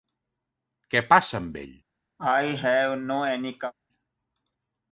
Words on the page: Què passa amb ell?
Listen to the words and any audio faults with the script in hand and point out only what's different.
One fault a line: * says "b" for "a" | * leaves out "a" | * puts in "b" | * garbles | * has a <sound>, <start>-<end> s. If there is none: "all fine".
* has a cough, 2.2-3.7 s